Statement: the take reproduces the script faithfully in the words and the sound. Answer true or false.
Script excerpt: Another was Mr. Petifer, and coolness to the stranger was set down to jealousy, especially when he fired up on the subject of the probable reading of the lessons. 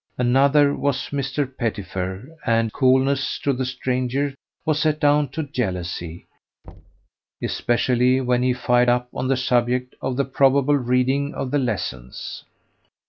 false